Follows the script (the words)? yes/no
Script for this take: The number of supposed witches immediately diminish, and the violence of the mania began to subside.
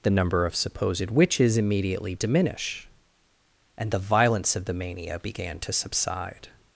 yes